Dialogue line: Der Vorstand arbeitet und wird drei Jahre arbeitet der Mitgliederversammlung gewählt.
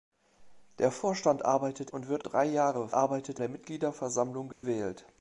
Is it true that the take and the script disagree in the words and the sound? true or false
true